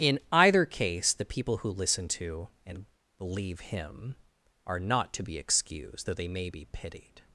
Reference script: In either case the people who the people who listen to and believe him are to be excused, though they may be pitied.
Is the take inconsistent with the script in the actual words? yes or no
yes